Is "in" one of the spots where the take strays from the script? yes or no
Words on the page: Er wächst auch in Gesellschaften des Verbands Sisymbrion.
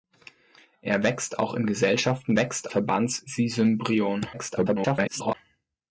no